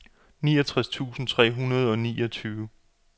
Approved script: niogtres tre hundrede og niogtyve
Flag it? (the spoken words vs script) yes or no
yes